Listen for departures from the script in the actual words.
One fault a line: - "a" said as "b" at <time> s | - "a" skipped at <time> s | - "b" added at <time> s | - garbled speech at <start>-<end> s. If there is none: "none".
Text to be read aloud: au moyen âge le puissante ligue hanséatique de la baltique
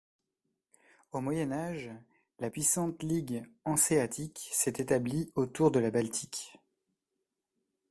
- "le" said as "la" at 2.4 s
- "s'est établie autour" added at 4.5 s